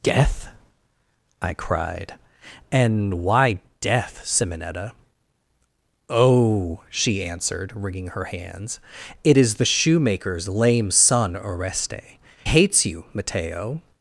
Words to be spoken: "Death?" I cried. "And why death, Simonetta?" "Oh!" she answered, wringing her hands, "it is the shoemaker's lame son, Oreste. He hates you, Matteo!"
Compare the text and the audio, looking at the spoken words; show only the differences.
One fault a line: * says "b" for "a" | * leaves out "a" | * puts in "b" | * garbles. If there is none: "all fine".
* leaves out "He"